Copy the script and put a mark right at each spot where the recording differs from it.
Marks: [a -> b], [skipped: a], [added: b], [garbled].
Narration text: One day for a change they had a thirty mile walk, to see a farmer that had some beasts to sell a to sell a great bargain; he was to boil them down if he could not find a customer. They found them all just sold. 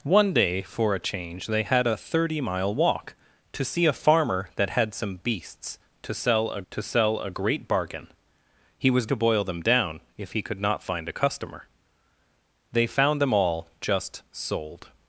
One day for a change they had a thirty mile walk, to see a farmer that had some beasts to sell a to sell a great bargain; he was to boil them down if he could not find a customer. They found them all just sold.